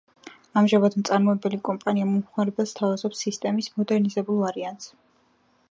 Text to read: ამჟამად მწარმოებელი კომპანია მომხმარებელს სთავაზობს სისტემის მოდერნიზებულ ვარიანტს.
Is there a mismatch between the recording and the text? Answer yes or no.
no